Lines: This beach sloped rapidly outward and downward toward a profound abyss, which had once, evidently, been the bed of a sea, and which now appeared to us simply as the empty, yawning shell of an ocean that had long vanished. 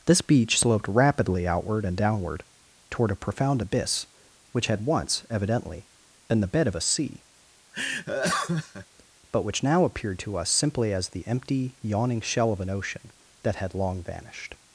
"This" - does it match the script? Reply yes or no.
yes